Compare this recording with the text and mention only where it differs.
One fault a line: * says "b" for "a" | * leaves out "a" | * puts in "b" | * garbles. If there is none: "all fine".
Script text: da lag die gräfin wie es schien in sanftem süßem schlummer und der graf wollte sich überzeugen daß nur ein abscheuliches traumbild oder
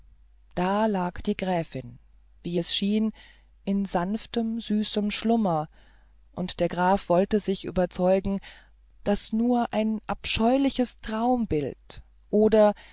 all fine